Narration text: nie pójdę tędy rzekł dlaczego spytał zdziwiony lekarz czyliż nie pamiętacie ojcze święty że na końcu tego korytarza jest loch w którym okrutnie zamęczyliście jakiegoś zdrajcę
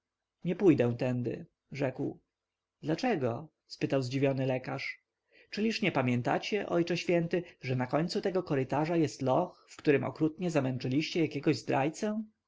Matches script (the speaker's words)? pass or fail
pass